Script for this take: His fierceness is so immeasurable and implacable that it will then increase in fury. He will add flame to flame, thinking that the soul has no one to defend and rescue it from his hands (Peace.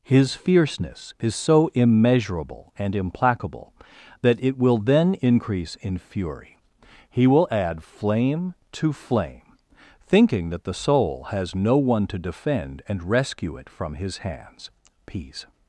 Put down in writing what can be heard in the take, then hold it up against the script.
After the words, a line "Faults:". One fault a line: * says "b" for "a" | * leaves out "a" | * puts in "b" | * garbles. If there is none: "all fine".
His fierceness is so immeasurable and implacable that it will then increase in fury. He will add flame to flame, thinking that the soul has no one to defend and rescue it from his hands (Peace.
Faults:
all fine